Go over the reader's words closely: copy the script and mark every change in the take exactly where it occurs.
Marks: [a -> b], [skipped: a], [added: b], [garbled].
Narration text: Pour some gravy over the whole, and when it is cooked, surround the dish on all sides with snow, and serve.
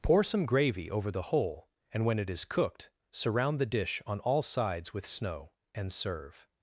Pour some gravy over the whole, and when it is cooked, surround the dish on all sides with snow, and serve.